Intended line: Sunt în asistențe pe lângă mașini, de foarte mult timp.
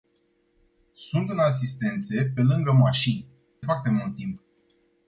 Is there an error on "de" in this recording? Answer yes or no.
yes